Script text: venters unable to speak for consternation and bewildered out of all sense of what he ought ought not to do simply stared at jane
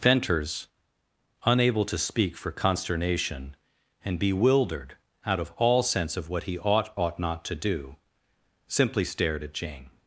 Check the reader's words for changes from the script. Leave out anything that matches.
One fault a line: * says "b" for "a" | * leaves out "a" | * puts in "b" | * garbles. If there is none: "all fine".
all fine